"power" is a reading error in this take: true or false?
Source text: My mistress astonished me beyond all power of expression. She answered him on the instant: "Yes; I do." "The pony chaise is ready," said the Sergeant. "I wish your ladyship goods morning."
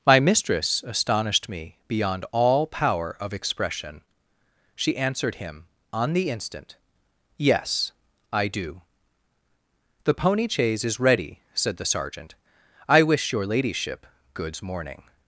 false